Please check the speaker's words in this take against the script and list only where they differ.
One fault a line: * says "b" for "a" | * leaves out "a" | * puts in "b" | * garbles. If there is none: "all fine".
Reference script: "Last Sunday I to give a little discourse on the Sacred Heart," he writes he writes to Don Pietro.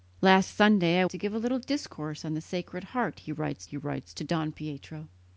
all fine